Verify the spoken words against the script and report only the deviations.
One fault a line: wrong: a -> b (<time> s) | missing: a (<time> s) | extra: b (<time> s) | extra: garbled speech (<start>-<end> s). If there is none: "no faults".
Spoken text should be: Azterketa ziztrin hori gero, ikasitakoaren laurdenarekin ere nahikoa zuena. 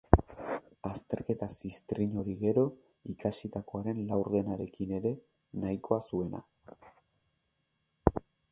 no faults